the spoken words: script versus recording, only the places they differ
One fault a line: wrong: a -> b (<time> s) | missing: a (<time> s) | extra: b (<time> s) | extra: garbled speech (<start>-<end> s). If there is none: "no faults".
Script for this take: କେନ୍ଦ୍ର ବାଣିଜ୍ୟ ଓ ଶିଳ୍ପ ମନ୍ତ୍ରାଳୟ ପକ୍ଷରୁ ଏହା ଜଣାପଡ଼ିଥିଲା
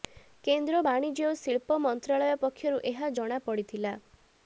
no faults